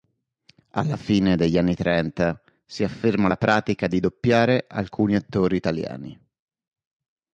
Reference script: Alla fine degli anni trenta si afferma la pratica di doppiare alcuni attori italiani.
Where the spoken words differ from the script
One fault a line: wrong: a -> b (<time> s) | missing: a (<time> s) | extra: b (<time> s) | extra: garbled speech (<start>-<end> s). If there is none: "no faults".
no faults